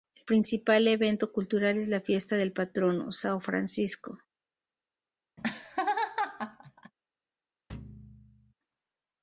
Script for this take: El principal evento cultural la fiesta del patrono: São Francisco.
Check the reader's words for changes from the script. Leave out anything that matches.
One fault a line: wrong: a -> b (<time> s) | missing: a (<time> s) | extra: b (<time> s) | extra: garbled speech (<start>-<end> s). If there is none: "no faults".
extra: es (1.8 s)